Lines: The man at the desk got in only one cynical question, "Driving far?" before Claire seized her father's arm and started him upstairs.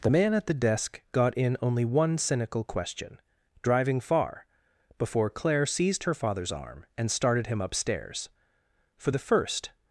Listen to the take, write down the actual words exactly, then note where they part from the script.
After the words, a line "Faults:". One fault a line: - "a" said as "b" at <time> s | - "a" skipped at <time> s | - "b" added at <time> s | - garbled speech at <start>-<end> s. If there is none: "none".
The man at the desk got in only one cynical question, "Driving far?" before Claire seized her father's arm and started him upstairs. For the first
Faults:
- "For the first" added at 9.0 s